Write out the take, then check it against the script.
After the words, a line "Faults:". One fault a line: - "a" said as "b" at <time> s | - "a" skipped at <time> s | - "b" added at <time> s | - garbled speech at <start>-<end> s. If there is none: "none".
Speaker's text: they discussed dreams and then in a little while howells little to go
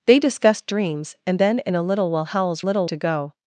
they discussed dreams and then in a little while howells little to go
Faults:
none